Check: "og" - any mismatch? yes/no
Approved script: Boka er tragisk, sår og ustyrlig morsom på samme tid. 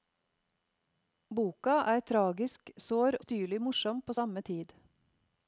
yes